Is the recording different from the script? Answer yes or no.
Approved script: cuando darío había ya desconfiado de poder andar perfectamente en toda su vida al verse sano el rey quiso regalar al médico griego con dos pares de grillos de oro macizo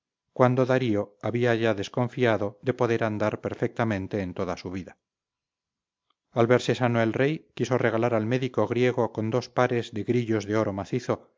no